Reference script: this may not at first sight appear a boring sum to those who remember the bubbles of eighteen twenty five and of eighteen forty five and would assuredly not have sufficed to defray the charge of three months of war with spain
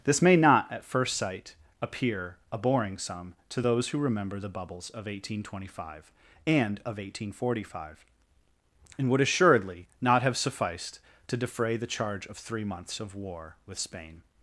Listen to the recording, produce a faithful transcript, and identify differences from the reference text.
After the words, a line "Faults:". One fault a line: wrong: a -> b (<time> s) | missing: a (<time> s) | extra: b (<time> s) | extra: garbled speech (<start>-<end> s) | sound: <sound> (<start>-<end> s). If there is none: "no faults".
this may not at first sight appear a boring sum to those who remember the bubbles of eighteen twenty five and of eighteen forty five and would assuredly not have sufficed to defray the charge of three months of war with spain
Faults:
no faults